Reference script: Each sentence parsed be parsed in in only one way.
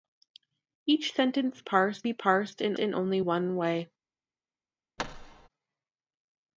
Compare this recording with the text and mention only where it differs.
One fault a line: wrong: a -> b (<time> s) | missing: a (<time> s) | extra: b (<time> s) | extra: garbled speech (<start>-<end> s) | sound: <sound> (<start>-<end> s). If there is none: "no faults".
sound: thud (5.0-5.5 s)